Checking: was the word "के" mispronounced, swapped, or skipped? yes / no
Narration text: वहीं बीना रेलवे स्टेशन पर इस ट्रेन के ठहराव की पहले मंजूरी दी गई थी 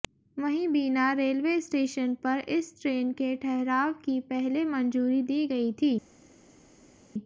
no